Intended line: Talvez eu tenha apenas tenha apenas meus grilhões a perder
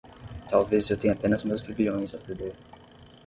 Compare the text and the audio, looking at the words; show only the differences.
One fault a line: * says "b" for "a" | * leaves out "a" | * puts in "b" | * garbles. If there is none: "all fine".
* leaves out "tenha apenas"